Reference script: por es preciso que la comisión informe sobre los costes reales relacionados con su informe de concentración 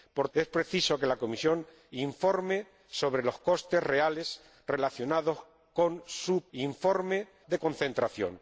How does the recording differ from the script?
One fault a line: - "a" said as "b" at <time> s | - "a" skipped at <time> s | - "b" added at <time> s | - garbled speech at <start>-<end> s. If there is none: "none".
none